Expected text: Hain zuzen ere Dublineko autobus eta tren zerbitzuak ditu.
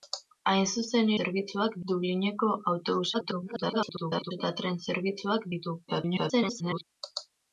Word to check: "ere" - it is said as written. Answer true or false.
false